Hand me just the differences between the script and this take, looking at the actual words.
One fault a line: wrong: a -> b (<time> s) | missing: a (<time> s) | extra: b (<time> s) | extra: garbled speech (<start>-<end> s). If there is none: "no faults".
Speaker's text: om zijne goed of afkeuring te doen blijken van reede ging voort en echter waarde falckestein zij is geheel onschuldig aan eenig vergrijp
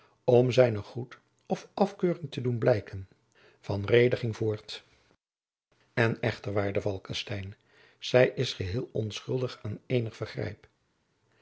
no faults